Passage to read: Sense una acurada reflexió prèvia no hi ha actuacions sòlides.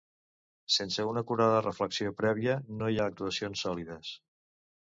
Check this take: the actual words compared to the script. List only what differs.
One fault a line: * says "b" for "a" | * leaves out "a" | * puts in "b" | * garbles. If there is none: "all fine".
all fine